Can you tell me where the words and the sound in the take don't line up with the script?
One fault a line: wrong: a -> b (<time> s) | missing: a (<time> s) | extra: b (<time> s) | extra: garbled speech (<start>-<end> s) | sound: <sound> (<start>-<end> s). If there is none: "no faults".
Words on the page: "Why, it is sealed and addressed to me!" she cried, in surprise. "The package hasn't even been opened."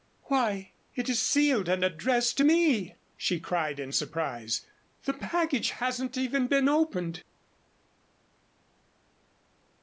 no faults